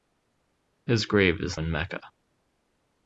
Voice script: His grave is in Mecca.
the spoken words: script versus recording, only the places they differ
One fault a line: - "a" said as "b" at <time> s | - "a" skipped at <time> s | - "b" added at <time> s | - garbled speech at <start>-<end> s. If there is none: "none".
none